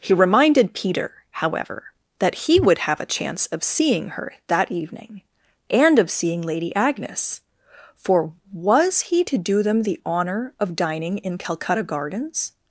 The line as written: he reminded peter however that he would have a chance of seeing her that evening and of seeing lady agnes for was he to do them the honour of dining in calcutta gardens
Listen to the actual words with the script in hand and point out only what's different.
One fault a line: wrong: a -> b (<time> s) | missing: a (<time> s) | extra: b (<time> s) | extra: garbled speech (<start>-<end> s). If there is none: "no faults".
no faults